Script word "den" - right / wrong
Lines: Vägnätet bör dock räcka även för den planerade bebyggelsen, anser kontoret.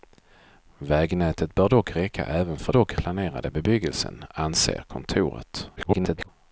wrong